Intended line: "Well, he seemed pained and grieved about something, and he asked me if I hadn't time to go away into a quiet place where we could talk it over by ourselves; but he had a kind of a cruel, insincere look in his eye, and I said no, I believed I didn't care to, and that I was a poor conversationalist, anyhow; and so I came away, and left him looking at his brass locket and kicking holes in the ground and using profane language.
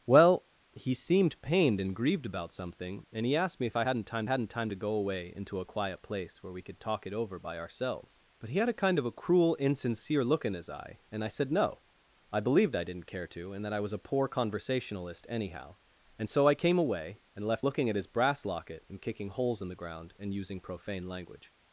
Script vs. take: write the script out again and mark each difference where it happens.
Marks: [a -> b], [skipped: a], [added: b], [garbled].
"Well, he seemed pained and grieved about something, and he asked me if I hadn't time [added: hadn't time] to go away into a quiet place where we could talk it over by ourselves; but he had a kind of a cruel, insincere look in his eye, and I said no, I believed I didn't care to, and that I was a poor conversationalist, anyhow; and so I came away, and left [skipped: him] looking at his brass locket and kicking holes in the ground and using profane language.